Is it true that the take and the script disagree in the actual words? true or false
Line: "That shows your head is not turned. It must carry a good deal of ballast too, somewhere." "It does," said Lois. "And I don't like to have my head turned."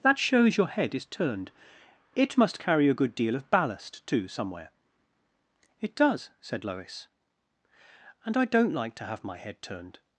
true